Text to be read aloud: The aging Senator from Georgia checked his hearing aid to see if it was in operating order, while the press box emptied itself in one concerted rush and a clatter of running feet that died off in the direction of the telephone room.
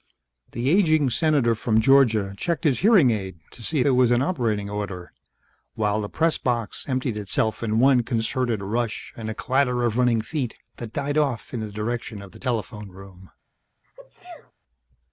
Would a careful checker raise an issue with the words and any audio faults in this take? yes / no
yes